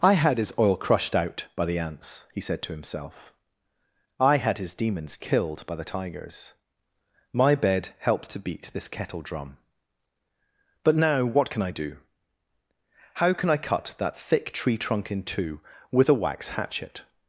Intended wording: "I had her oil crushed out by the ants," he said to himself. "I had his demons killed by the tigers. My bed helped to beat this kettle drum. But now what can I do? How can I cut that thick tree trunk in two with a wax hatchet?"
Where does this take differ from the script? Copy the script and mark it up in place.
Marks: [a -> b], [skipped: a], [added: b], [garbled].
"I had [her -> his] oil crushed out by the ants," he said to himself. "I had his demons killed by the tigers. My bed helped to beat this kettle drum. But now what can I do? How can I cut that thick tree trunk in two with a wax hatchet?"